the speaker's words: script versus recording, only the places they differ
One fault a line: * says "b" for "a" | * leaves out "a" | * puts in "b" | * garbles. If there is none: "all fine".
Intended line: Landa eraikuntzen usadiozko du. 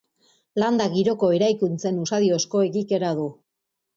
* puts in "giroko"
* puts in "egikera"